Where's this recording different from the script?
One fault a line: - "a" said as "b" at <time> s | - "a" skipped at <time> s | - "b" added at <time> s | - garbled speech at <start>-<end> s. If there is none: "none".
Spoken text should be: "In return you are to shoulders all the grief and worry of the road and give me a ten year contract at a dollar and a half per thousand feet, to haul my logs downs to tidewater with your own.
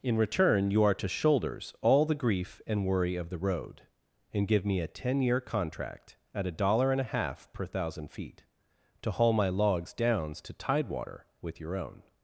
none